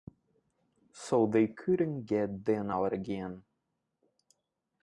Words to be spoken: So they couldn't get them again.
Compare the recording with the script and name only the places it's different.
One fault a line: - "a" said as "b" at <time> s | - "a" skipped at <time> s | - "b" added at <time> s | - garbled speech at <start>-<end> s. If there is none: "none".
- "out" added at 2.7 s